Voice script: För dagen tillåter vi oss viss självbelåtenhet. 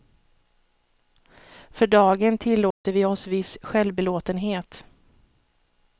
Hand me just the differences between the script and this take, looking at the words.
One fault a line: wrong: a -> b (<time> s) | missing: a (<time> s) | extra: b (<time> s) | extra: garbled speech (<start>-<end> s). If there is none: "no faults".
no faults